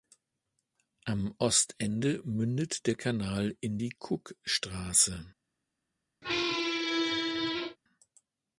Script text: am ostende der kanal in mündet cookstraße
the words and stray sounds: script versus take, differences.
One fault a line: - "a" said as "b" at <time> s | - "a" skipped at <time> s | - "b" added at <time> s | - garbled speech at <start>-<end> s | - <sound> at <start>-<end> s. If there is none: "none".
- "mündet" added at 2.2 s
- "mündet" said as "die" at 3.8 s
- squeak at 6.2-7.8 s